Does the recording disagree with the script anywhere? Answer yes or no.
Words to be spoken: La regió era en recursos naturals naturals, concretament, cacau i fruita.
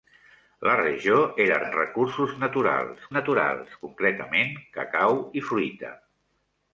no